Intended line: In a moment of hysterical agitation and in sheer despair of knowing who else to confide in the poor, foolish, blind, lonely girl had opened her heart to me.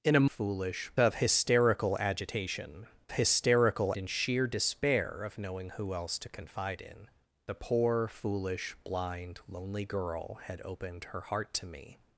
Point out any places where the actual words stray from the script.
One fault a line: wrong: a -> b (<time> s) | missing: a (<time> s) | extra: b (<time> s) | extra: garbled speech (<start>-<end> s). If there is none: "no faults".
wrong: moment -> foolish (0.2 s)
wrong: and -> hysterical (3.1 s)